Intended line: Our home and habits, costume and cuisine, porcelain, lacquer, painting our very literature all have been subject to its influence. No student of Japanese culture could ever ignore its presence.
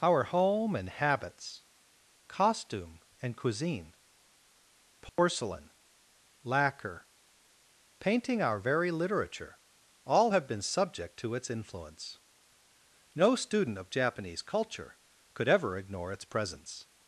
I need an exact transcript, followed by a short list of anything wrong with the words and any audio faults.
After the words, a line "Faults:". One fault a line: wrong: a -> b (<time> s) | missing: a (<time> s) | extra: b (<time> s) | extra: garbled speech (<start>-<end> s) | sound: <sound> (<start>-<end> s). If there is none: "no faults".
Our home and habits, costume and cuisine, porcelain, lacquer, painting our very literature all have been subject to its influence. No student of Japanese culture could ever ignore its presence.
Faults:
sound: dropout (5.1-5.2 s)